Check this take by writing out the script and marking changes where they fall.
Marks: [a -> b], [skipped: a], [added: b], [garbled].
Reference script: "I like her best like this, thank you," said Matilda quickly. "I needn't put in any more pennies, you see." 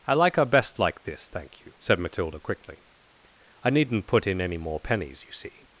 "I like her best like this, thank you," said Matilda quickly. "I needn't put in any more pennies, you see."